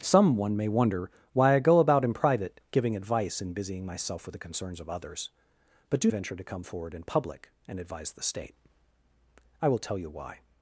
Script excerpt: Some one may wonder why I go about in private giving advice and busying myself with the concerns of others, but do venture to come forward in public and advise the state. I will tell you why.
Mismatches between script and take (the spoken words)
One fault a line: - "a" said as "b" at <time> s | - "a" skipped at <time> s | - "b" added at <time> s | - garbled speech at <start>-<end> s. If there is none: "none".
none